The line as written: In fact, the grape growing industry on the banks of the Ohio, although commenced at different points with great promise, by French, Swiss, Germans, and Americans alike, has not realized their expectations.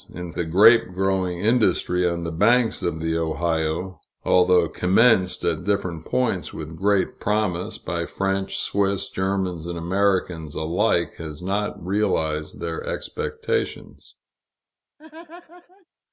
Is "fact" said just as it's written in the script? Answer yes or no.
no